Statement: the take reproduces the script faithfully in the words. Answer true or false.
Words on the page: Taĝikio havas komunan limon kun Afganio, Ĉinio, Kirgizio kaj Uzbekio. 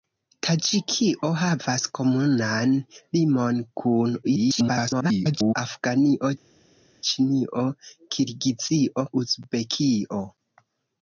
false